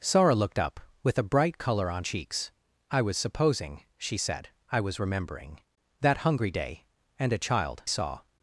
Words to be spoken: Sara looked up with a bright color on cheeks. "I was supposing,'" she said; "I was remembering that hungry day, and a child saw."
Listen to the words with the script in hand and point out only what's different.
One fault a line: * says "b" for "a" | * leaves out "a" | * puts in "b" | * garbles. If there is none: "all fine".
all fine